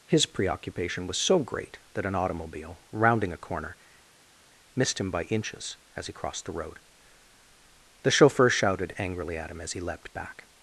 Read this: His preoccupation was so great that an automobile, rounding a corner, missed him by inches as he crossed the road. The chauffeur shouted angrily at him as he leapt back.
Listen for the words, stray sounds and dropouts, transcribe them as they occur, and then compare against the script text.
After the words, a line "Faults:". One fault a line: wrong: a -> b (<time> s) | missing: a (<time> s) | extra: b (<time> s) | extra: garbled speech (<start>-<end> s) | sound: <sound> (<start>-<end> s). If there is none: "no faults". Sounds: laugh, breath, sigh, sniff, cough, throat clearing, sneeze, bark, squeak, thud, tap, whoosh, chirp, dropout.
His preoccupation was so great that an automobile, rounding a corner, missed him by inches as he crossed the road. The chauffeur shouted angrily at him as he leapt back.
Faults:
no faults